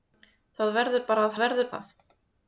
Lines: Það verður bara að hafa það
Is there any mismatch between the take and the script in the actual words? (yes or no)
yes